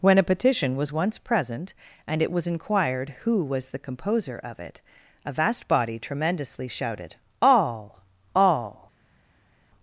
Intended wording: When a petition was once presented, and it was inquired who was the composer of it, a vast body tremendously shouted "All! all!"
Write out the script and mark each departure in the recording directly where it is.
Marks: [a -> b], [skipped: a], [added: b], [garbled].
When a petition was once [presented, -> present] and it was inquired who was the composer of it, a vast body tremendously shouted "All! all!"